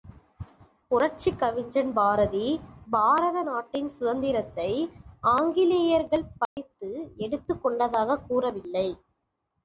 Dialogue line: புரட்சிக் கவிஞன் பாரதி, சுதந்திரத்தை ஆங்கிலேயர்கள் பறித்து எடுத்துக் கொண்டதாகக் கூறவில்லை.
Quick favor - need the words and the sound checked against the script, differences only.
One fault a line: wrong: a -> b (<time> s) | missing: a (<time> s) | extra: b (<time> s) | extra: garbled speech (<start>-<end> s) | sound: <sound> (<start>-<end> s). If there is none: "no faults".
extra: பாரத நாட்டின் (2.9 s)
sound: dropout (6.5-6.6 s)